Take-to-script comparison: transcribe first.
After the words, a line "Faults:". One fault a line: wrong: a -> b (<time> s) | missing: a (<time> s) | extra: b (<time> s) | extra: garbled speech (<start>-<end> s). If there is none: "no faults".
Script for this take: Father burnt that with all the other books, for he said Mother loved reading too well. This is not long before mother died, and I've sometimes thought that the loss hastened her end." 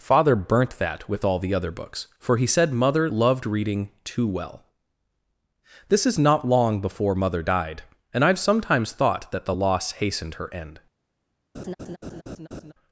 Father burnt that with all the other books, for he said Mother loved reading too well. This is not long before mother died, and I've sometimes thought that the loss hastened her end."
Faults:
no faults